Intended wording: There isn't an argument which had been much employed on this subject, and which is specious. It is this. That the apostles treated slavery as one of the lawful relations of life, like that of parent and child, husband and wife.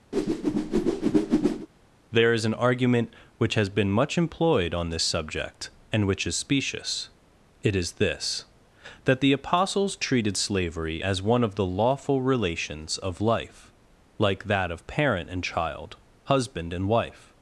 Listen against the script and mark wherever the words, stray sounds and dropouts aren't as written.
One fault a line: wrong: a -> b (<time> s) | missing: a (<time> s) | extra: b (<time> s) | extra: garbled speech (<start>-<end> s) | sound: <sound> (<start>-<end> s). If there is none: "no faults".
sound: whoosh (0.1-1.7 s)
wrong: isn't -> is (2.3 s)
wrong: had -> has (3.5 s)